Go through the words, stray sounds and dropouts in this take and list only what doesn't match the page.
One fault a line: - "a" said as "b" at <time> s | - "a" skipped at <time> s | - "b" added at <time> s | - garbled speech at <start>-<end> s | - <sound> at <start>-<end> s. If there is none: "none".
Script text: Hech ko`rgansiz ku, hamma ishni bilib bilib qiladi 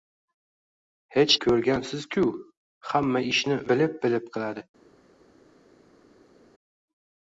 none